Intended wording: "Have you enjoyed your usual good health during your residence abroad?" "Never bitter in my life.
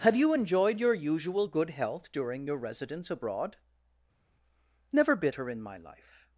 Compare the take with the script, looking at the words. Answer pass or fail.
pass